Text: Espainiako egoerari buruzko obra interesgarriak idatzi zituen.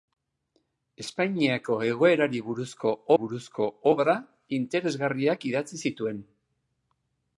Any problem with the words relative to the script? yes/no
yes